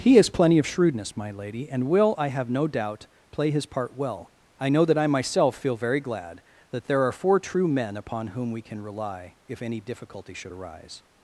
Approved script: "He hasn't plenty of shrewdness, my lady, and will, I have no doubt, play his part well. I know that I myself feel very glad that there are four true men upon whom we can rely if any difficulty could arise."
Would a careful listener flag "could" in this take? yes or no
yes